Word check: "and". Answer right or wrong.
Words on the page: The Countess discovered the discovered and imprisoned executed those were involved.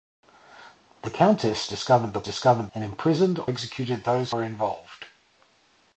right